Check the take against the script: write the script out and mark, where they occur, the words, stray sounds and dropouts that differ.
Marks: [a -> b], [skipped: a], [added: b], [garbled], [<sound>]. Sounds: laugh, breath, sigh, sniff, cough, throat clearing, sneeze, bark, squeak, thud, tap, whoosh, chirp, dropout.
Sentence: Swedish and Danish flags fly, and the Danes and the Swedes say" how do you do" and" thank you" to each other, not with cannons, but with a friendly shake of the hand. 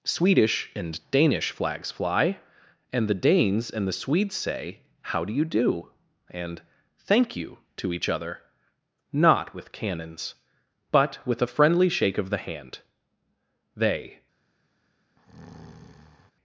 Swedish and Danish flags fly, and the Danes and the Swedes say" how do you do" and" thank you" to each other, not with cannons, but with a friendly shake of the hand. [added: They] [breath]